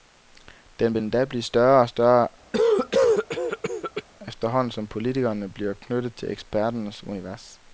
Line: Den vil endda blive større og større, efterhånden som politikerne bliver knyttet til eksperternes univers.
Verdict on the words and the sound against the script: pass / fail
fail